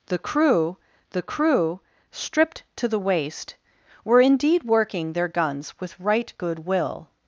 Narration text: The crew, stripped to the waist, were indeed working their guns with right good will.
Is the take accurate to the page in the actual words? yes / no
no